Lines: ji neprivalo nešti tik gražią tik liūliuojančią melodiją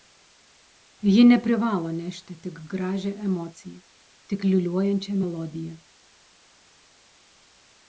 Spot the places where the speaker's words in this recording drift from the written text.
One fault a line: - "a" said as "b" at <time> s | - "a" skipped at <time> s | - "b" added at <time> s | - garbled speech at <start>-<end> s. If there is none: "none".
- "emociją" added at 3.3 s